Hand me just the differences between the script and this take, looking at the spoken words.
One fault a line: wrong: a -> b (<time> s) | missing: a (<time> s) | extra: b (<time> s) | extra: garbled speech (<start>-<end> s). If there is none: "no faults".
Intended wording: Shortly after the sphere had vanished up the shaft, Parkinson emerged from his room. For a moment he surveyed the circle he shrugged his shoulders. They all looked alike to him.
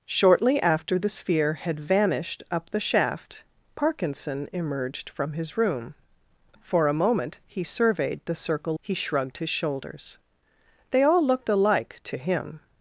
no faults